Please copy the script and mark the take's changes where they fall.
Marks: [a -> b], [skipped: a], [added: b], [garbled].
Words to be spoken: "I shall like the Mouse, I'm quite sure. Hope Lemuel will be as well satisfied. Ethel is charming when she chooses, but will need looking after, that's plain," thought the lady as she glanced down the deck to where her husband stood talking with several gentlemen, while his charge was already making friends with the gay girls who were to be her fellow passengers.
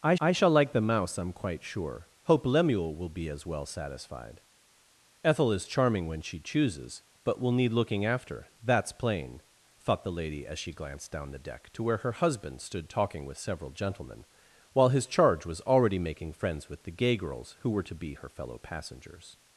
"I [added: I] shall like the Mouse, I'm quite sure. Hope Lemuel will be as well satisfied. Ethel is charming when she chooses, but will need looking after, that's plain," thought the lady as she glanced down the deck to where her husband stood talking with several gentlemen, while his charge was already making friends with the gay girls who were to be her fellow passengers.